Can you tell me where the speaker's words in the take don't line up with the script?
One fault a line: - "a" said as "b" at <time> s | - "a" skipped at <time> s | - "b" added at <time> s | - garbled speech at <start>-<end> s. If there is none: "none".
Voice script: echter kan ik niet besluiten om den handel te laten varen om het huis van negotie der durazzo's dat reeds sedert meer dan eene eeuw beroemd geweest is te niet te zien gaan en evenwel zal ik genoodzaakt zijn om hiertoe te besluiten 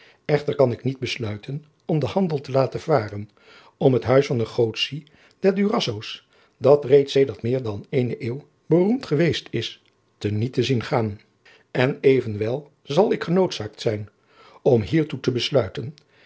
none